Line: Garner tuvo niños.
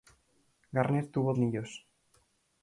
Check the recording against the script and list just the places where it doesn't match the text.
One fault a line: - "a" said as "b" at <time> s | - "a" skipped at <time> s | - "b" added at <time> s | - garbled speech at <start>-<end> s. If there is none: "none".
none